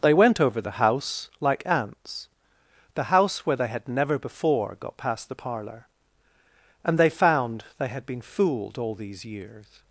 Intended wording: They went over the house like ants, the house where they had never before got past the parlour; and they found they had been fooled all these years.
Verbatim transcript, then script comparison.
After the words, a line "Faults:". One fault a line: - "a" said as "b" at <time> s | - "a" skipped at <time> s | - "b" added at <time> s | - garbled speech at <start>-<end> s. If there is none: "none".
They went over the house like ants, the house where they had never before got past the parlour; and they found they had been fooled all these years.
Faults:
none